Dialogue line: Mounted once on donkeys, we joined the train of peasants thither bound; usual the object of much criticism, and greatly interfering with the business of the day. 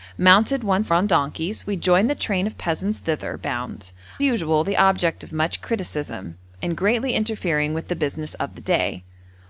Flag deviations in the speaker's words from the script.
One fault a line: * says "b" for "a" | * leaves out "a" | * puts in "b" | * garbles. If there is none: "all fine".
all fine